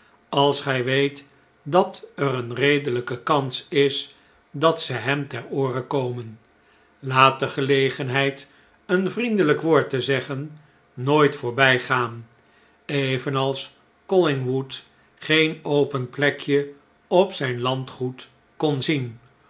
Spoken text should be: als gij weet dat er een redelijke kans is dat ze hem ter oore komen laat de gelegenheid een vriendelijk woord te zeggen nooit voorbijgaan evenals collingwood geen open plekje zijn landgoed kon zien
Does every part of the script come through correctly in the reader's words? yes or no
no